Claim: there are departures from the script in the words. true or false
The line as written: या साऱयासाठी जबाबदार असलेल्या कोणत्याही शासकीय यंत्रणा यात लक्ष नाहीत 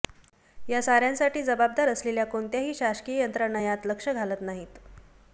true